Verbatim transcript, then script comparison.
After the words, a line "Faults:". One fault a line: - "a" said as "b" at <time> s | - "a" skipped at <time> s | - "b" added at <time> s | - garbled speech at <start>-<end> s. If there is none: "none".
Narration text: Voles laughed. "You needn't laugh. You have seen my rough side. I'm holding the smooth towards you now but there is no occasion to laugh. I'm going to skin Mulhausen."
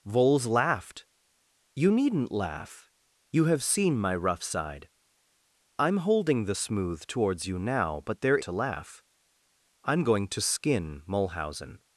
Voles laughed. "You needn't laugh. You have seen my rough side. I'm holding the smooth towards you now but there to laugh. I'm going to skin Mulhausen."
Faults:
- "is no occasion" skipped at 8.4 s